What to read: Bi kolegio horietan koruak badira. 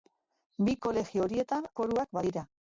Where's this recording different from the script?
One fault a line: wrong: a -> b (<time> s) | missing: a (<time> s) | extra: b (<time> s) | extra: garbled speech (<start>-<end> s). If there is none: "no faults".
no faults